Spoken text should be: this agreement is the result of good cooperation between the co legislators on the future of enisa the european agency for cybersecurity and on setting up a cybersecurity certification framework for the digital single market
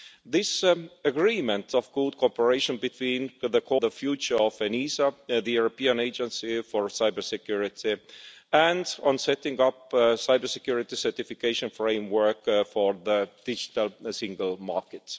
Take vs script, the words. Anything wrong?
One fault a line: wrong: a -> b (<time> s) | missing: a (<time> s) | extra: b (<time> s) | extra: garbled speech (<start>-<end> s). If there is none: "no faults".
missing: is the result (1.8 s)
missing: legislators on (3.8 s)